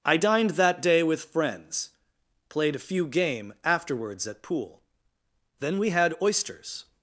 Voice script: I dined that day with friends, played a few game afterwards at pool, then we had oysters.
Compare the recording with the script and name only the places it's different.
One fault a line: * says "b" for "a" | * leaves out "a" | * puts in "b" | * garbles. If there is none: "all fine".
all fine